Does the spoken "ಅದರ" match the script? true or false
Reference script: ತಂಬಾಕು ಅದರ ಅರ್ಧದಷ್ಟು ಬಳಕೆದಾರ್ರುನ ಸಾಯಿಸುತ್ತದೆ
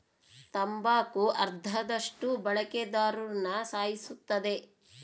false